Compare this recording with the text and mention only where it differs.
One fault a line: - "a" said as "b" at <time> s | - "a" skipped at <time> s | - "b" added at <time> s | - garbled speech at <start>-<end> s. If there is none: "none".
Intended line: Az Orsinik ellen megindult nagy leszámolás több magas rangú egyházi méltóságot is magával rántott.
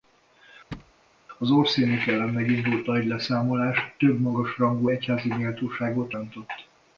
- "is magával" skipped at 6.1 s